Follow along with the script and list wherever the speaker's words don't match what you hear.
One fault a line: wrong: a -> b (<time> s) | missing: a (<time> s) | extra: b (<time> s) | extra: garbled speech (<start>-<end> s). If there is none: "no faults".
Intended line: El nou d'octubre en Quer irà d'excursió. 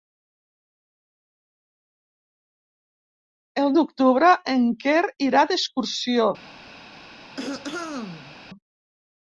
missing: nou (3.7 s)